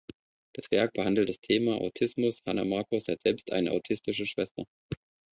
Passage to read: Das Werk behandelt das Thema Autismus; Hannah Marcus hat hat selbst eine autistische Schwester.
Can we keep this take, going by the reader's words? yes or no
no